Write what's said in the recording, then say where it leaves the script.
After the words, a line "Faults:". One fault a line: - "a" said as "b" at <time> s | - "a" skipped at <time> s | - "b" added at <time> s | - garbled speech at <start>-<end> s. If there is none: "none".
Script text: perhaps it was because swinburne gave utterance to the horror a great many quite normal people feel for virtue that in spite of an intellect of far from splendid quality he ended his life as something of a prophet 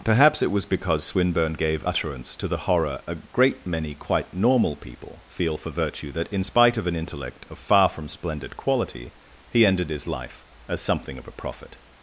perhaps it was because swinburne gave utterance to the horror a great many quite normal people feel for virtue that in spite of an intellect of far from splendid quality he ended his life as something of a prophet
Faults:
none